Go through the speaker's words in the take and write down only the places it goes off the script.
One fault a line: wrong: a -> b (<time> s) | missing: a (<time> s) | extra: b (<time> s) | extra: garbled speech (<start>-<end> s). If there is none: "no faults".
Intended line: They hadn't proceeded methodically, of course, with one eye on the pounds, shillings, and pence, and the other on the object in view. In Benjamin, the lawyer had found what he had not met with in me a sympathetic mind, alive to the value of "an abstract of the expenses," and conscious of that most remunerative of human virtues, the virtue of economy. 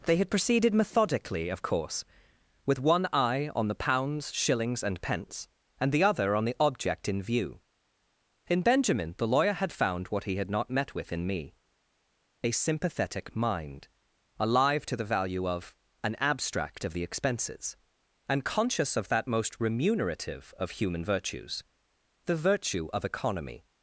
wrong: hadn't -> had (0.2 s)